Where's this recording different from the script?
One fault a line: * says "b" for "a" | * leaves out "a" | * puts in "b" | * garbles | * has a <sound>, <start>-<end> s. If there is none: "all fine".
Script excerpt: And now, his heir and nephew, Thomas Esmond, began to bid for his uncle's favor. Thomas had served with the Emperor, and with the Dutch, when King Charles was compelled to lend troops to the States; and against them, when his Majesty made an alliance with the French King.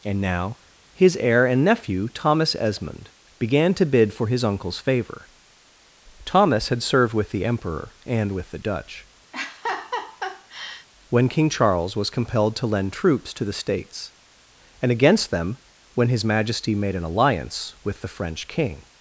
* has a laugh, 9.3-10.9 s